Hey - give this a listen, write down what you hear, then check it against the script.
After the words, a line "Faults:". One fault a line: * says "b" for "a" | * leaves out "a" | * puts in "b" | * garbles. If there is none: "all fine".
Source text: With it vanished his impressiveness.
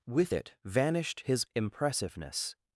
With it vanished his impressiveness.
Faults:
all fine